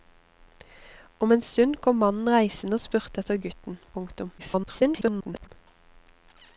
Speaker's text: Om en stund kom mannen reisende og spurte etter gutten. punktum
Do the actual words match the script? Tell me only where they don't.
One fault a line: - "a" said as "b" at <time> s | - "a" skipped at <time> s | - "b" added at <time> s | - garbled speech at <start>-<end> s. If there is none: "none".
- garbled speech at 4.4-5.5 s